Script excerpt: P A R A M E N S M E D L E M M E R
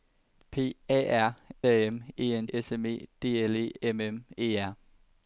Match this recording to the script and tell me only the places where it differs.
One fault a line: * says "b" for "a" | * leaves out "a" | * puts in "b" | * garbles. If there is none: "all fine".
all fine